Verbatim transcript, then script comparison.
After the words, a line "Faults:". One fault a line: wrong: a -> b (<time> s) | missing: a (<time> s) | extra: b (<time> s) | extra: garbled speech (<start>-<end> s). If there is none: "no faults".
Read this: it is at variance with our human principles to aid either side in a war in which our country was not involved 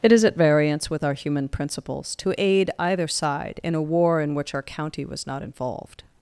it is at variance with our human principles to aid either side in a war in which our county was not involved
Faults:
wrong: country -> county (4.6 s)